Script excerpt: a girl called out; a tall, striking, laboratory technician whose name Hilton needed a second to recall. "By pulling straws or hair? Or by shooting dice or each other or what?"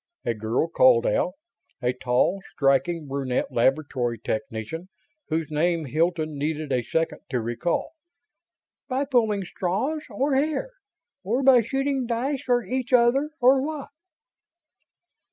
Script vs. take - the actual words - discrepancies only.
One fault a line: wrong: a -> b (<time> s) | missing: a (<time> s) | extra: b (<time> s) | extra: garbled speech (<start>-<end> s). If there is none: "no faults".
extra: brunette (3.1 s)